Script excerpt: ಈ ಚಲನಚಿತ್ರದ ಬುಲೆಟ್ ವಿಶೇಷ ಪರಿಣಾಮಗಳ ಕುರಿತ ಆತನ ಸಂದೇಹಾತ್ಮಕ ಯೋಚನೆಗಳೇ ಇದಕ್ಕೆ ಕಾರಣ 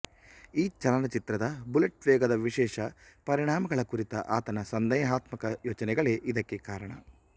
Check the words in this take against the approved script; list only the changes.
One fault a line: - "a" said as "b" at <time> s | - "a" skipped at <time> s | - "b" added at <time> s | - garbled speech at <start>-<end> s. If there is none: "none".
- "ವೇಗದ" added at 2.1 s